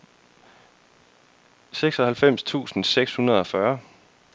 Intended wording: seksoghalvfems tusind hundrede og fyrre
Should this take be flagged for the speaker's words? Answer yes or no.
yes